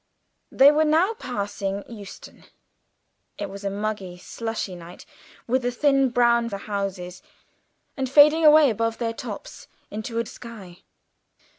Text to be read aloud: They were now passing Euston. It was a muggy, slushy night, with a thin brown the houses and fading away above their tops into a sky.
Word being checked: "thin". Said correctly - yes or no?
yes